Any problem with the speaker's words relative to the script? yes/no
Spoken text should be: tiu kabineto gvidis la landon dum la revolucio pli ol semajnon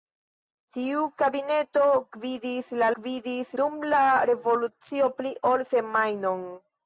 yes